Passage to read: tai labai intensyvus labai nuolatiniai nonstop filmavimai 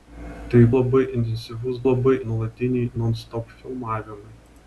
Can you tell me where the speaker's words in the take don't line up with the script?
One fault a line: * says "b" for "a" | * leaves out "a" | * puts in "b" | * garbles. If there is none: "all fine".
all fine